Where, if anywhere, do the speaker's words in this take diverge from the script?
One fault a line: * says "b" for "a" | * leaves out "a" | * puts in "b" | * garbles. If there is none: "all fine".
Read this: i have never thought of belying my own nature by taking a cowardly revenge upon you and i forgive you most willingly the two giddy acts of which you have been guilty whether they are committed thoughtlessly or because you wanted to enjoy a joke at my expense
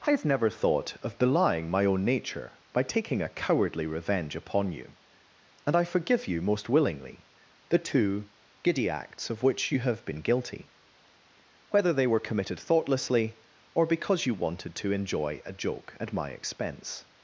* says "were" for "are"